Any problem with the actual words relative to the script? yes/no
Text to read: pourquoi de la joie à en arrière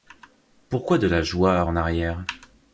no